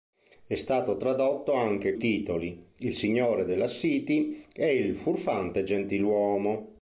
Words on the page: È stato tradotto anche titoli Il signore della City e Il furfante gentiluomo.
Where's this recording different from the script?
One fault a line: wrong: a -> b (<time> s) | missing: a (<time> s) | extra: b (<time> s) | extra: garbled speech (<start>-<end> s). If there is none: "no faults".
no faults